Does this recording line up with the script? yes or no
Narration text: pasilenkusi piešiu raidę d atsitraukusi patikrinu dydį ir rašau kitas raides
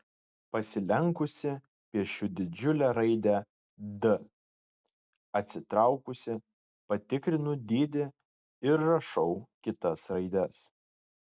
no